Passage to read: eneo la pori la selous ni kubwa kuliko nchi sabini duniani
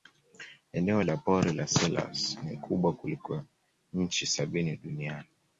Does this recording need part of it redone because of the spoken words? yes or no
no